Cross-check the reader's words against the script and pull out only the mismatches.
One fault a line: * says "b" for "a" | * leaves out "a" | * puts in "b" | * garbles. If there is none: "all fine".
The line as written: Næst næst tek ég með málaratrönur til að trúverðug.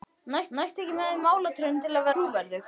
all fine